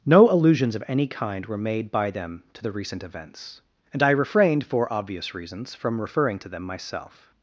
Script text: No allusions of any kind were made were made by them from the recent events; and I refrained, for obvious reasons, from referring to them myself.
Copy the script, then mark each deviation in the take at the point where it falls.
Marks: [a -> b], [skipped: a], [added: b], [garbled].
No allusions of any kind were made [skipped: were made] by them [from -> to] the recent events; and I refrained, for obvious reasons, from referring to them myself.